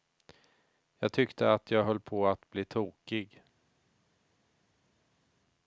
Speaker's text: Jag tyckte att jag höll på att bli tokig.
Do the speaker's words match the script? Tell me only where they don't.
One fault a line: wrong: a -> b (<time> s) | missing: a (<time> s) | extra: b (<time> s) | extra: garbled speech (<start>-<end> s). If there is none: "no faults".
no faults